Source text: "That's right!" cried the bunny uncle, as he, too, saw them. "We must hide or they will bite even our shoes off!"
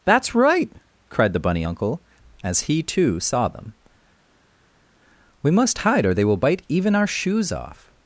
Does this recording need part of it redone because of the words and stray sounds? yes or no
no